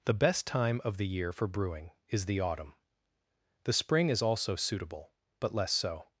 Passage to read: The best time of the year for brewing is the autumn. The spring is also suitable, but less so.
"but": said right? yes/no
yes